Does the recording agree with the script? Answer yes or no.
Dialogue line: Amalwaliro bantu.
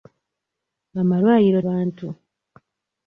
yes